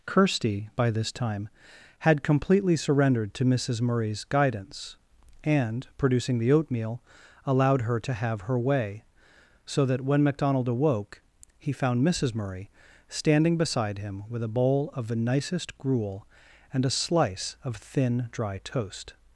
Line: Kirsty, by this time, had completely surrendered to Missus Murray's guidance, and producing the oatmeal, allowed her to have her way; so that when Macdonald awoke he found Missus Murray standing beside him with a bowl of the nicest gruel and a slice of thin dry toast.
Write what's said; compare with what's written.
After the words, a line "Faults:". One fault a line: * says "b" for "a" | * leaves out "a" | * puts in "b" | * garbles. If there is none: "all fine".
Kirsty, by this time, had completely surrendered to Missus Murray's guidance, and producing the oatmeal, allowed her to have her way; so that when Macdonald awoke he found Missus Murray standing beside him with a bowl of the nicest gruel and a slice of thin dry toast.
Faults:
all fine